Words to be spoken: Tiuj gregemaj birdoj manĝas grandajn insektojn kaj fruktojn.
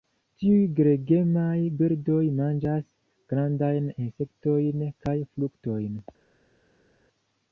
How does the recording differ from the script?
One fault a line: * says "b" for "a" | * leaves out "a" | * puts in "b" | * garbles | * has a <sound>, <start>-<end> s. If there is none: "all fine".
all fine